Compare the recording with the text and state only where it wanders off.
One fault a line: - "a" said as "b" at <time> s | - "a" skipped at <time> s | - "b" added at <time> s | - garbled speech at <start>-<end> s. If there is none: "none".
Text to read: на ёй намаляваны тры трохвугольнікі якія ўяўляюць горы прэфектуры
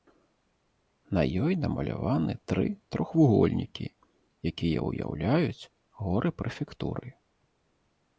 none